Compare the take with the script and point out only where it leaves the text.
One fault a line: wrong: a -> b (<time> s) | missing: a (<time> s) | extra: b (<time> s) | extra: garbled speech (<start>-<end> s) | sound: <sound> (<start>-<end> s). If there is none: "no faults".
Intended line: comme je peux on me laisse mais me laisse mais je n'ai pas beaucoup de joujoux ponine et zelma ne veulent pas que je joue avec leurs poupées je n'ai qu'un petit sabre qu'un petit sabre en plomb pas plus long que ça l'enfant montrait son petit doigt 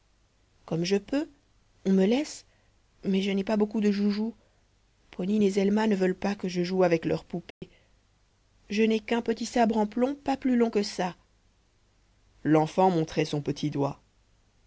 missing: me laisse mais (3.2 s)
sound: dropout (7.5-7.6 s)
missing: qu'un petit sabre (9.8 s)